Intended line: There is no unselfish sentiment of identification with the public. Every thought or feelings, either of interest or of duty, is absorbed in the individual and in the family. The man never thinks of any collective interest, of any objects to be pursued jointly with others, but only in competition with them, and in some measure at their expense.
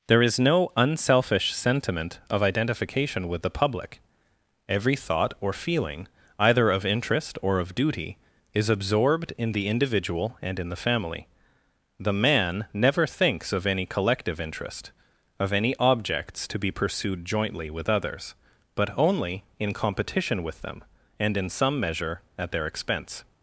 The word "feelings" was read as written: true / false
false